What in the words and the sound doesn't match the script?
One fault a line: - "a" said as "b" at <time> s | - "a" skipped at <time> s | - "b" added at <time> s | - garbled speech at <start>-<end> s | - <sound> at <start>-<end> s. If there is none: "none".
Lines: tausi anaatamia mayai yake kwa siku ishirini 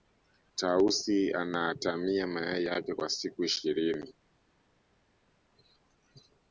none